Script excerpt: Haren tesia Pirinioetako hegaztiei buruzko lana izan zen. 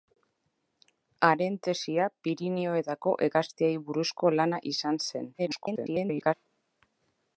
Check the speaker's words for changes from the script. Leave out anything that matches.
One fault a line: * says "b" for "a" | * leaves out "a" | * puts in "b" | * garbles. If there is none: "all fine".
* garbles